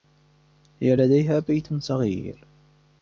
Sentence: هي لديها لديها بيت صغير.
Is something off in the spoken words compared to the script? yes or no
yes